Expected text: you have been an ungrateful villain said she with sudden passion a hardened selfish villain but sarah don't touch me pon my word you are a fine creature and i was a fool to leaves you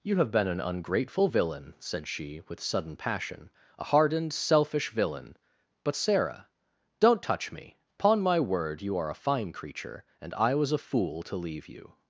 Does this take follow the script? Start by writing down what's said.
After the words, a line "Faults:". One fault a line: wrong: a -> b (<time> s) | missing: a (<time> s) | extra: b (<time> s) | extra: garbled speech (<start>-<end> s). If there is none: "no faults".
you have been an ungrateful villain said she with sudden passion a hardened selfish villain but sarah don't touch me pon my word you are a fine creature and i was a fool to leave you
Faults:
wrong: leaves -> leave (11.4 s)